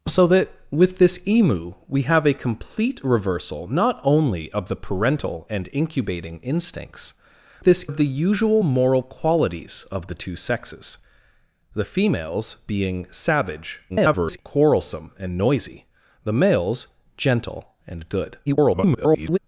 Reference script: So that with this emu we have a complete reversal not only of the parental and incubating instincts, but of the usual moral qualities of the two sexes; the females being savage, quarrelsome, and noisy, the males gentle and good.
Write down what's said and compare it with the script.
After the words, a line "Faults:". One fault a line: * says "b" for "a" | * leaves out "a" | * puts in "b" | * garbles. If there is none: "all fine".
So that with this emu we have a complete reversal not only of the parental and incubating instincts, this of the usual moral qualities of the two sexes; the females being savage, [garbled] quarrelsome, and noisy, the males gentle and good. [garbled]
Faults:
* says "this" for "but"
* garbles
* garbles